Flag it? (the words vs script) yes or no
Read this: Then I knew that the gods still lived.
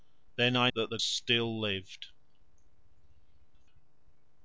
yes